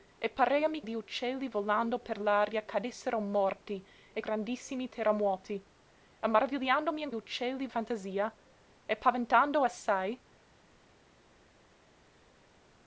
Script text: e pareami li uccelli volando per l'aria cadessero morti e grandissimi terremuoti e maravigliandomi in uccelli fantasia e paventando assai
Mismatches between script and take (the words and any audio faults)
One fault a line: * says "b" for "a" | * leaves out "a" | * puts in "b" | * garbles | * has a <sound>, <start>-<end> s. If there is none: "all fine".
all fine